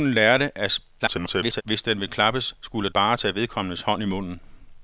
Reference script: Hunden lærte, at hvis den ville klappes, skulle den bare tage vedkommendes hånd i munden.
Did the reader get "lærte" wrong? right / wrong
right